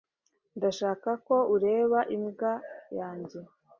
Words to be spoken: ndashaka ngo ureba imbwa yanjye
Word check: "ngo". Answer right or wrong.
wrong